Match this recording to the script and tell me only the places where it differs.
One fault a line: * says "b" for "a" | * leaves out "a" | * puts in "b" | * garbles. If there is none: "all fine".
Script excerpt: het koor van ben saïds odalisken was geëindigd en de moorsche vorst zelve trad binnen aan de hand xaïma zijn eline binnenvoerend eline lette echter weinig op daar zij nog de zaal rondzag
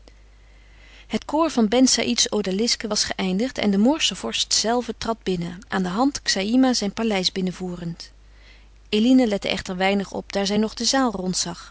* says "paleis" for "eline"